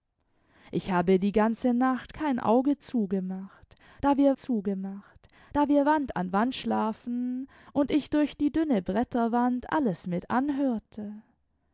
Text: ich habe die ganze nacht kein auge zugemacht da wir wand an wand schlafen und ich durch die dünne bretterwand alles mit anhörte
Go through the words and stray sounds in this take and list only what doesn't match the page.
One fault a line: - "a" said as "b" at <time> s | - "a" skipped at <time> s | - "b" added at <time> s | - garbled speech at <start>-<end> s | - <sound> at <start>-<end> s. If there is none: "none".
- "zugemacht da wir" added at 4.3 s